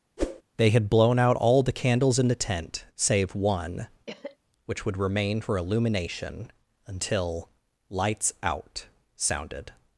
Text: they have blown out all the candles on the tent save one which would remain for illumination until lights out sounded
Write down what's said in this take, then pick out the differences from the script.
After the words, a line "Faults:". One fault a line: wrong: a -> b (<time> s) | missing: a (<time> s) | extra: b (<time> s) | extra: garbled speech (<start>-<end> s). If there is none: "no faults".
they had blown out all the candles in the tent save one which would remain for illumination until lights out sounded
Faults:
wrong: have -> had (0.7 s)
wrong: on -> in (2.2 s)